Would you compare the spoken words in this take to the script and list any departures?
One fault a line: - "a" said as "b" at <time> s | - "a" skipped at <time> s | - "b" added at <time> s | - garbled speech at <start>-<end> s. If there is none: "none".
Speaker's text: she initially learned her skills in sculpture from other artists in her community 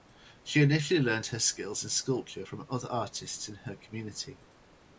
none